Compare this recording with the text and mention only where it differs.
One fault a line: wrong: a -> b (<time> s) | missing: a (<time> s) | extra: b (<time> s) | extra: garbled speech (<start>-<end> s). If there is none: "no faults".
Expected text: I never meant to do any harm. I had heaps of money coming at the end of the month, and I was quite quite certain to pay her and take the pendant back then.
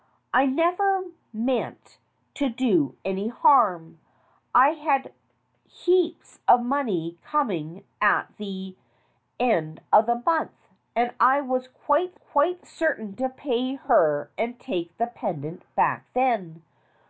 no faults